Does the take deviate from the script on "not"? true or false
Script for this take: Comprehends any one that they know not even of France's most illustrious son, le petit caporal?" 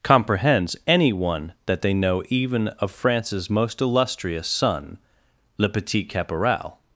true